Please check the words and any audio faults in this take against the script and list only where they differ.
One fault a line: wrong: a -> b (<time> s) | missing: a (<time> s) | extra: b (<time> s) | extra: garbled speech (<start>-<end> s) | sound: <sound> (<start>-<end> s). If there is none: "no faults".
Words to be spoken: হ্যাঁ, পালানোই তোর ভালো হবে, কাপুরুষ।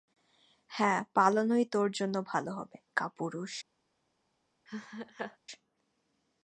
extra: জন্য (1.9 s)
sound: laugh (4.7-5.4 s)